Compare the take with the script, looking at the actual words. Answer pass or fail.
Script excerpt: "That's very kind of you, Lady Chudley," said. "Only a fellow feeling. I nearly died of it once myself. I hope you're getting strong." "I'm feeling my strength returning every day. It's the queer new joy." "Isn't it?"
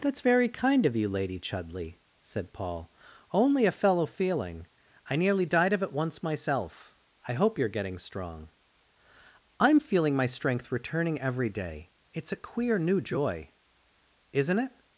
fail